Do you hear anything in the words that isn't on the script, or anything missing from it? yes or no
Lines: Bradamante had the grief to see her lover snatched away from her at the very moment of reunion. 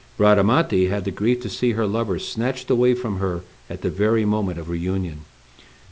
no